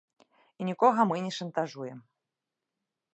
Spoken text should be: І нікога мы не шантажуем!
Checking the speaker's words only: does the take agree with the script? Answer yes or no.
yes